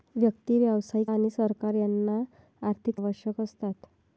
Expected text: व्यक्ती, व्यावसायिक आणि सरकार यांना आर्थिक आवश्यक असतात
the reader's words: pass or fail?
pass